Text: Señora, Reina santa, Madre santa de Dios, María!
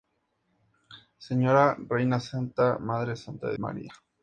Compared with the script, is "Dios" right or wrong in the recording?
wrong